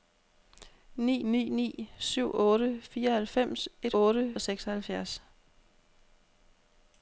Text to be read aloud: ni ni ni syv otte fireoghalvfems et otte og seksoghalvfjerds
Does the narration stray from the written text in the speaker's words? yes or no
no